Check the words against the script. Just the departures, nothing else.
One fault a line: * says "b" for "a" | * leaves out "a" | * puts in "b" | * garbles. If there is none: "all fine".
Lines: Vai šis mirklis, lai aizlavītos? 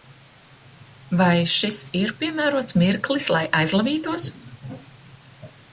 * puts in "ir piemērots"